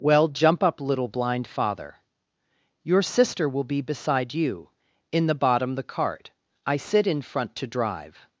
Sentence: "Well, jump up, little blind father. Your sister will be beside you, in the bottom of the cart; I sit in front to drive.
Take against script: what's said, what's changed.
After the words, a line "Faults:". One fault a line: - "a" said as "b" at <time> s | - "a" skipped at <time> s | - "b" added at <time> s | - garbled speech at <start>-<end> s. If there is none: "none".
"Well, jump up, little blind father. Your sister will be beside you, in the bottom the cart; I sit in front to drive.
Faults:
- "of" skipped at 5.8 s